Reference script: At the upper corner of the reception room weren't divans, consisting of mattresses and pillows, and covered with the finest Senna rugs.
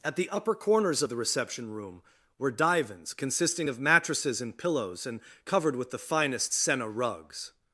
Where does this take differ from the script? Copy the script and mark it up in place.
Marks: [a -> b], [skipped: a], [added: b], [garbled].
At the upper [corner -> corners] of the reception room [weren't -> were] divans, consisting of mattresses and pillows, and covered with the finest Senna rugs.